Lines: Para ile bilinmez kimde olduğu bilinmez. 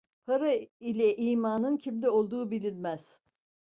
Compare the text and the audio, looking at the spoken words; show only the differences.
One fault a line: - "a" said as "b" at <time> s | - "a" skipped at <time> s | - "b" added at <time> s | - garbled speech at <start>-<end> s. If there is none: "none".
- "bilinmez" said as "imanın" at 1.2 s